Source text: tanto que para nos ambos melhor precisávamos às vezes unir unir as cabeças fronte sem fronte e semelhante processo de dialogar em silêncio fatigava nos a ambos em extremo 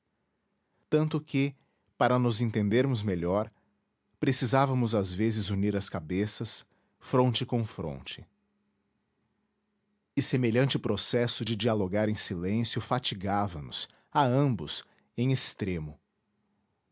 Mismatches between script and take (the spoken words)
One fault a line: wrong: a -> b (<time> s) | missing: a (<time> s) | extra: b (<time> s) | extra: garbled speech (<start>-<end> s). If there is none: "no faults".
wrong: ambos -> entendermos (2.4 s)
missing: unir (5.8 s)
wrong: sem -> com (7.5 s)